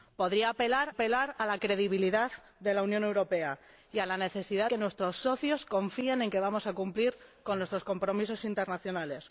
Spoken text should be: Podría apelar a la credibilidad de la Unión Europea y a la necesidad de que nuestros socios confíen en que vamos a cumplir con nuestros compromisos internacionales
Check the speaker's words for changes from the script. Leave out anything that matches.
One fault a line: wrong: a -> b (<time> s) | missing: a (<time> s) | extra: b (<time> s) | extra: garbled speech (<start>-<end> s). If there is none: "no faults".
extra: apelar (0.9 s)
missing: de (4.7 s)